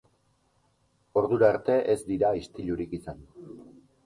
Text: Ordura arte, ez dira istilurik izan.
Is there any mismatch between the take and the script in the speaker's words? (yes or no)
no